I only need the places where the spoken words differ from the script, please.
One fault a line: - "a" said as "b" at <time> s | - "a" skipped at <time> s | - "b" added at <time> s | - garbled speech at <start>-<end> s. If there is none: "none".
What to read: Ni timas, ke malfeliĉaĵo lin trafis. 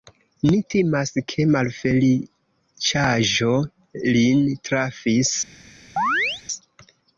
none